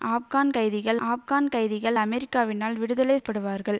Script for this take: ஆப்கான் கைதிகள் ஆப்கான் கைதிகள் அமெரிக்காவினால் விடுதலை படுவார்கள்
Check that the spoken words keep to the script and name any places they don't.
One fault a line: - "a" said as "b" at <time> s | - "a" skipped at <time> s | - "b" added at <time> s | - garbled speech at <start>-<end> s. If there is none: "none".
none